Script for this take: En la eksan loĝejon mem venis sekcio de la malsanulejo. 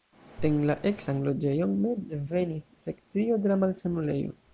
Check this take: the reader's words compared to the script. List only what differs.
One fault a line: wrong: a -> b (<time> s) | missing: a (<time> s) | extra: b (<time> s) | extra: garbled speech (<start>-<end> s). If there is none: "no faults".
no faults